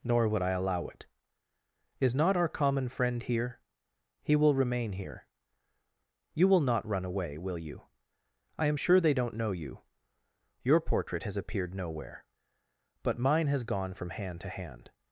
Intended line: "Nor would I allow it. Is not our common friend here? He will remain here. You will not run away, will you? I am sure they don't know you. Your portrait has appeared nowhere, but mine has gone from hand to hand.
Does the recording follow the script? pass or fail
pass